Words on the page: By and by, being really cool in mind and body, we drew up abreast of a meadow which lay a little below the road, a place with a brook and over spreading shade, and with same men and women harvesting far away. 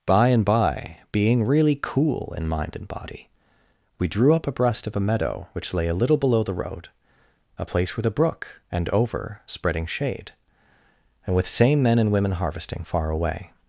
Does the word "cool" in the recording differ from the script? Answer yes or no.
no